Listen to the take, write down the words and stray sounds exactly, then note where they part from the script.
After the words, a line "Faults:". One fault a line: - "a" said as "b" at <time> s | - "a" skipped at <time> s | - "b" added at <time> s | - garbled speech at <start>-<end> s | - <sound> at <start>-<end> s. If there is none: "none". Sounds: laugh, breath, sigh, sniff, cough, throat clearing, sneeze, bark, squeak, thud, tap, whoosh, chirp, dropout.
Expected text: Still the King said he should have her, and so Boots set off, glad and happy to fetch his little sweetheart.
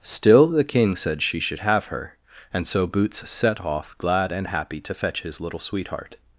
Still the King said she should have her, and so Boots set off, glad and happy to fetch his little sweetheart.
Faults:
- "he" said as "she" at 1.2 s